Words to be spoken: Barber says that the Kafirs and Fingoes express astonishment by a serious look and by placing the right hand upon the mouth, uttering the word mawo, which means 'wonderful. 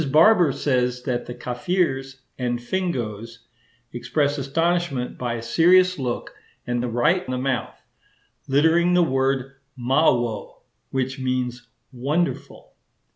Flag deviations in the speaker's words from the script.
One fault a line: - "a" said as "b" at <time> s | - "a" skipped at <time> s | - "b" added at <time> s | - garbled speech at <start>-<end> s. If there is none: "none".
- "by placing" skipped at 6.8 s
- "hand upon" skipped at 7.3 s